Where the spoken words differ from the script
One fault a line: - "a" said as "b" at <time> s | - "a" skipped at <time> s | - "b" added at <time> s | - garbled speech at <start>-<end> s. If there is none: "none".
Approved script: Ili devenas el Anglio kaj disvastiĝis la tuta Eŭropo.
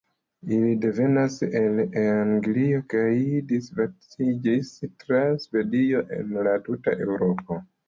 - "tra Svedio en" added at 5.0 s